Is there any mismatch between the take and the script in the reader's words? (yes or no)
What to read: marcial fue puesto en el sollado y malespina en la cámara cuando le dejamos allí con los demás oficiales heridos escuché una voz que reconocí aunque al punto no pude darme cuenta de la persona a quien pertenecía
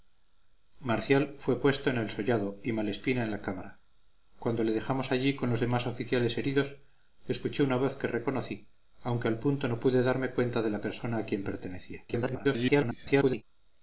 yes